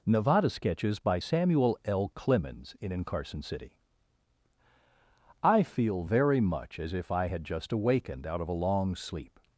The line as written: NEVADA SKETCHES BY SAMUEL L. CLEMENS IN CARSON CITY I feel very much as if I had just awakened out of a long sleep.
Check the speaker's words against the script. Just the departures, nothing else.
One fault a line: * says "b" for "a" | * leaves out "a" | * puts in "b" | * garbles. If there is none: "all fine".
* puts in "IN"